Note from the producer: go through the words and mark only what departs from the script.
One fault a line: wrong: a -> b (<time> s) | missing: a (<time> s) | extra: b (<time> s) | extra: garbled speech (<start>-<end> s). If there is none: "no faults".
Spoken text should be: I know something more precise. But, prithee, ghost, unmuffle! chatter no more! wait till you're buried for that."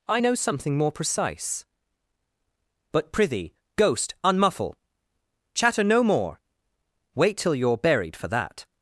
no faults